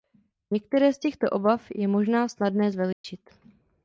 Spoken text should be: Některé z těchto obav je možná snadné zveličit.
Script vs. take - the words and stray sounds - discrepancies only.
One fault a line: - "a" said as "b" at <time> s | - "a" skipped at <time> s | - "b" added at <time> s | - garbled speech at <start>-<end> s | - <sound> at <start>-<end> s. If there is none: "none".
- dropout at 2.9-3.0 s